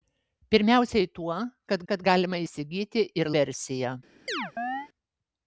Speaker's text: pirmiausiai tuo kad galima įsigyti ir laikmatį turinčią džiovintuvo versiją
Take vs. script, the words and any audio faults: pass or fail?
fail